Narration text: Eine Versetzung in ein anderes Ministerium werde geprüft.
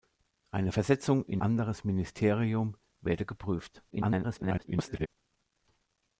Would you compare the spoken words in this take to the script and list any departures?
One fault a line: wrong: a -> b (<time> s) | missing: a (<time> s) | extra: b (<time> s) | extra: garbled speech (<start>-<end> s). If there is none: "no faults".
missing: ein (1.4 s)
extra: garbled speech (3.9-5.1 s)